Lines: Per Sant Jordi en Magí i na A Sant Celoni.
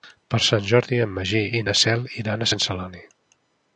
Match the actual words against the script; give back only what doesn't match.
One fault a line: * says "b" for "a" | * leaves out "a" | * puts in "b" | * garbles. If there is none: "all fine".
* puts in "Cel iran"